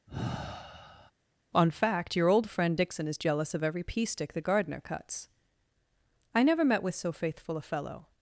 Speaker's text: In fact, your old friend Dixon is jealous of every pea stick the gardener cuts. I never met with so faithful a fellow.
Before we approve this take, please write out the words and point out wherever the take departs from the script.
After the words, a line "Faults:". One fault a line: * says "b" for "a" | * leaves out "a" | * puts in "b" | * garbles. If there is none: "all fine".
On fact, your old friend Dixon is jealous of every pea stick the gardener cuts. I never met with so faithful a fellow.
Faults:
* says "On" for "In"